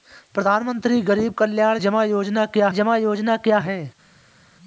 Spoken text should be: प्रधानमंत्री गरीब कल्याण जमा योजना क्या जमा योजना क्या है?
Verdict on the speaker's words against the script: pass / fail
pass